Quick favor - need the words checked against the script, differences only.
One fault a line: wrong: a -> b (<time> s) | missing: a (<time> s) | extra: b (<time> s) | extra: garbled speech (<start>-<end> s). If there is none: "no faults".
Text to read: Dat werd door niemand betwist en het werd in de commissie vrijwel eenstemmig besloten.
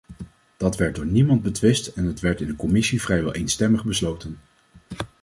no faults